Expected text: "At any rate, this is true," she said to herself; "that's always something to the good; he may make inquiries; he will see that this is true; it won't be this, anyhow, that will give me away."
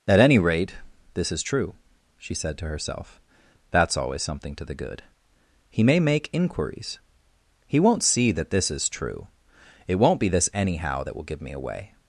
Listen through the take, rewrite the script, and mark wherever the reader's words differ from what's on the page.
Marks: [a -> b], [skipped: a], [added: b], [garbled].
"At any rate, this is true," she said to herself; "that's always something to the good; he may make inquiries; he [will -> won't] see that this is true; it won't be this, anyhow, that will give me away."